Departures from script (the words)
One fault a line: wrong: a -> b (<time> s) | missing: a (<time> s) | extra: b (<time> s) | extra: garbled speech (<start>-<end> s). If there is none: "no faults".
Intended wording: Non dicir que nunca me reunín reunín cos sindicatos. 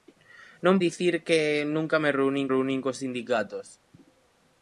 no faults